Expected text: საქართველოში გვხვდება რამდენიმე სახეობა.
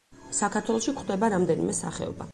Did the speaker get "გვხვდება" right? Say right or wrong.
right